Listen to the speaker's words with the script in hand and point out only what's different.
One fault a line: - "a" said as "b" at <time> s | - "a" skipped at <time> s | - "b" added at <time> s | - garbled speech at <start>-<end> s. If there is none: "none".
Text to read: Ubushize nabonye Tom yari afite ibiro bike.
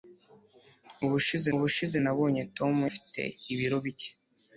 - "ubushize" added at 1.5 s
- "yari" skipped at 2.7 s